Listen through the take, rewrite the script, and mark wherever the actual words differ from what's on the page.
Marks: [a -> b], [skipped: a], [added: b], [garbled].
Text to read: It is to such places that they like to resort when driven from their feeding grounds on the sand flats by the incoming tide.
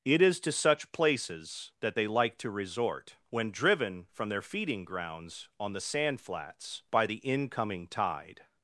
It is to such places that they like to resort when driven from their feeding grounds on the sand flats by the incoming tide.